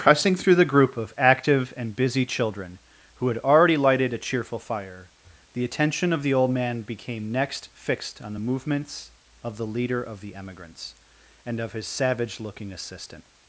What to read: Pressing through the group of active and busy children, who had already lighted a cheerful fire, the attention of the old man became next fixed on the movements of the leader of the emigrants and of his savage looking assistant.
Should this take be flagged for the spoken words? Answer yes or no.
no